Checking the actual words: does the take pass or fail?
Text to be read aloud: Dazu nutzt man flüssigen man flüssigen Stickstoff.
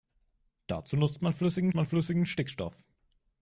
pass